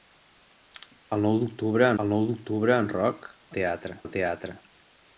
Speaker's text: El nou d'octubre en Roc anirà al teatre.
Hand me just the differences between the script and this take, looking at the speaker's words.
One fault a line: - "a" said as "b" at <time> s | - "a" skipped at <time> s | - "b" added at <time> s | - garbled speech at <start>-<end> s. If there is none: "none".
- "el nou d'octubre" added at 2.0 s
- "anirà" said as "teatre" at 3.6 s